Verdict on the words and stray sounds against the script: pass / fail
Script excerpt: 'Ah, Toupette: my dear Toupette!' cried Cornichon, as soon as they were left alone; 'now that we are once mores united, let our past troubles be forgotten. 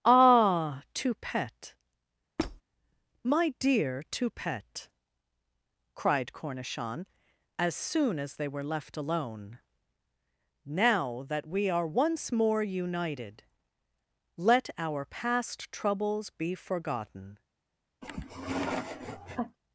fail